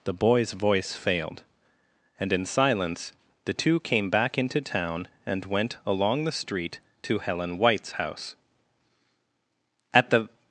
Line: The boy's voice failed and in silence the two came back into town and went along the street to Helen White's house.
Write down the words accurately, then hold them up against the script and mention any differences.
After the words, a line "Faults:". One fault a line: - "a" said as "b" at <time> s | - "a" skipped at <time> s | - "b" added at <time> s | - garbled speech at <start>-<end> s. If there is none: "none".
The boy's voice failed and in silence the two came back into town and went along the street to Helen White's house. At the
Faults:
- "At the" added at 9.9 s